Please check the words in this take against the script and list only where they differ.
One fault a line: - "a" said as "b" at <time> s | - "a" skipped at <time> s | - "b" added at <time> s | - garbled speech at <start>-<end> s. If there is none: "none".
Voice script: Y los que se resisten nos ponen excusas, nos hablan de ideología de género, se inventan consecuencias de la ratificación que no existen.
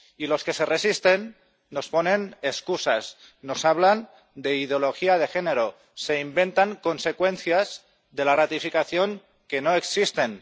none